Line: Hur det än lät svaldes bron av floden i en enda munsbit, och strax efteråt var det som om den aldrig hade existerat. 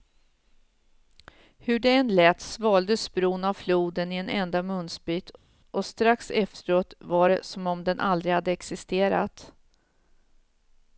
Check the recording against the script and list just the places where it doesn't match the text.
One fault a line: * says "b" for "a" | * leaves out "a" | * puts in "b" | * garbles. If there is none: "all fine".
all fine